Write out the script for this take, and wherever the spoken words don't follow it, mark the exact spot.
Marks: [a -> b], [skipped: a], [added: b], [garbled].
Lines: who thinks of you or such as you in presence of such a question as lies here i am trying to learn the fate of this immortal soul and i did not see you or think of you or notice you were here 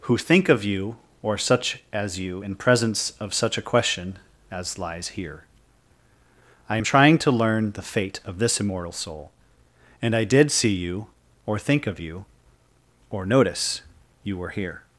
who [thinks -> think] of you or such as you in presence of such a question as lies here i am trying to learn the fate of this immortal soul and i did [skipped: not] see you or think of you or notice you were here